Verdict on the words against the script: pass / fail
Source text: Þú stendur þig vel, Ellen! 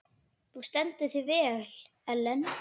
pass